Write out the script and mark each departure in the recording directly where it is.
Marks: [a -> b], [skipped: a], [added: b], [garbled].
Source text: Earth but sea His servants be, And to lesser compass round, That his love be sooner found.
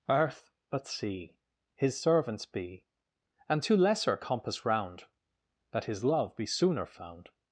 Earth but sea His servants be, And to lesser compass round, That his love be sooner found.